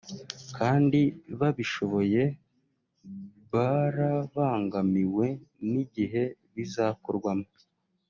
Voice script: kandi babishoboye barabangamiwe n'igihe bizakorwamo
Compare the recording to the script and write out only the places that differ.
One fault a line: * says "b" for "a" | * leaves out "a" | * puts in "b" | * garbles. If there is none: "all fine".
all fine